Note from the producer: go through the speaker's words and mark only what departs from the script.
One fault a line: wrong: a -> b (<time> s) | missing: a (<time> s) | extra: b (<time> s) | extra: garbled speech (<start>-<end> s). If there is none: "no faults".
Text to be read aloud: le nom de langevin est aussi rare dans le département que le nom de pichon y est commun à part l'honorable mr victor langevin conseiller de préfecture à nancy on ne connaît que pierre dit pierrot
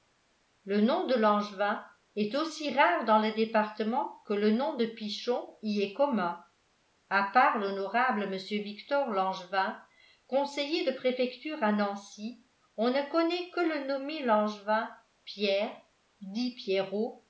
extra: le nommé langevin (13.6 s)